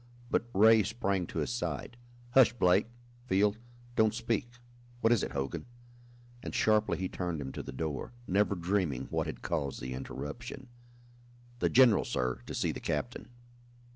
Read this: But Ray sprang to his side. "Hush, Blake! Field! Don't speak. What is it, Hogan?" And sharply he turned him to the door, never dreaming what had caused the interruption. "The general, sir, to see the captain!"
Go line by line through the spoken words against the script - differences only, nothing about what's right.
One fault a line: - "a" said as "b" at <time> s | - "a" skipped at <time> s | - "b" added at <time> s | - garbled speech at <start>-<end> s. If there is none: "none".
none